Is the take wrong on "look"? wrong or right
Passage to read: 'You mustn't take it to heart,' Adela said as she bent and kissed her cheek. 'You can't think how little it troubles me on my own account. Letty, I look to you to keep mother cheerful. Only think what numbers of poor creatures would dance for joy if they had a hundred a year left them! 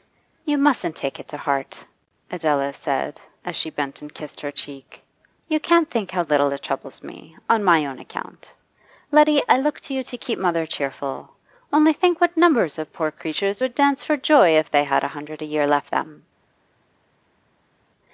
right